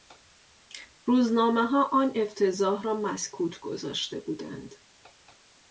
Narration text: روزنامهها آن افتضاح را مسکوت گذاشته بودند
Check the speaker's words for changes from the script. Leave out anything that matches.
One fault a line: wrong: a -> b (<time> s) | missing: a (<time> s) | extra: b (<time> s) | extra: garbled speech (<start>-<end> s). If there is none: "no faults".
no faults